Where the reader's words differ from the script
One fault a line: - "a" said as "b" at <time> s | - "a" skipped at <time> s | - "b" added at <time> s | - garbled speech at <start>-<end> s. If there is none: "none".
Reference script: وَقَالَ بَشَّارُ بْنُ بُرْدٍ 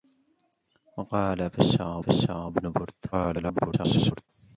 - "بَشَّارُ" added at 2.0 s
- garbled speech at 3.1-4.3 s